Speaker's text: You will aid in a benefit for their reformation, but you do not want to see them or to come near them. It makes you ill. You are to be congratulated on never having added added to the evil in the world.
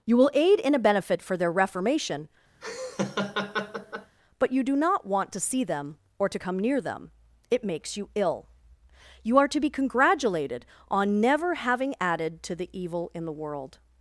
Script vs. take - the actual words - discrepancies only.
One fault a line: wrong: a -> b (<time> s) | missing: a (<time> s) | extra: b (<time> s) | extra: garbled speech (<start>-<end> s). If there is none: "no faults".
missing: added (12.4 s)